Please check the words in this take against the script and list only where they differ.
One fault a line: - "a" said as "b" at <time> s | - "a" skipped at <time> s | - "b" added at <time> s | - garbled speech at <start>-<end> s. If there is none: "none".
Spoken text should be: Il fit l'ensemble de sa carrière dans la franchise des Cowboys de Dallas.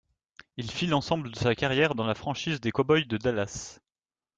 none